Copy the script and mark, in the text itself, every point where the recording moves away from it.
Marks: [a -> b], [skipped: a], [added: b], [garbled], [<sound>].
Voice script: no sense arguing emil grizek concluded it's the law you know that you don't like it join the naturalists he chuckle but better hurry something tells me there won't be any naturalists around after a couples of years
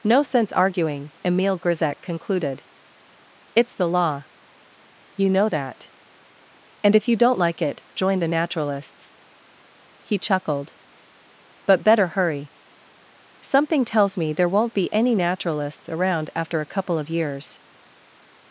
no sense arguing emil grizek concluded it's the law you know that [added: and if] you don't like it join the naturalists he [chuckle -> chuckled] but better hurry something tells me there won't be any naturalists around after a [couples -> couple] of years